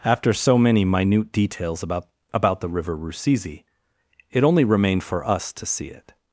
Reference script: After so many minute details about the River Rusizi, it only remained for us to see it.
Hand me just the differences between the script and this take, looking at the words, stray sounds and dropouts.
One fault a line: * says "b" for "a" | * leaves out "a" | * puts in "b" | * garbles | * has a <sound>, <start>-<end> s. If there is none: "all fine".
* puts in "about"